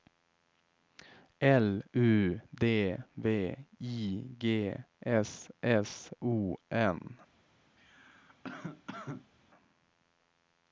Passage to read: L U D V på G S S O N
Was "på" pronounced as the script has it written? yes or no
no